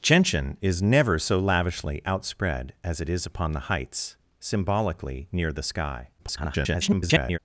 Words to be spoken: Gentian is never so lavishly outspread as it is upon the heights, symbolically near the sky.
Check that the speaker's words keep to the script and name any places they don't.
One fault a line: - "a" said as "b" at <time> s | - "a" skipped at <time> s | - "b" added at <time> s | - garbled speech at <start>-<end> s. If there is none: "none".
- garbled speech at 6.2-7.4 s